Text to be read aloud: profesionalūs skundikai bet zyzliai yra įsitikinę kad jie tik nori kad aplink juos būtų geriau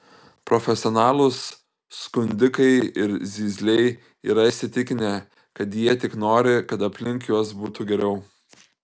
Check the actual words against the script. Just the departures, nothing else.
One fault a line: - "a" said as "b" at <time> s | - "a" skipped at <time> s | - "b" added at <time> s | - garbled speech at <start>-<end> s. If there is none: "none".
- "bet" said as "ir" at 3.0 s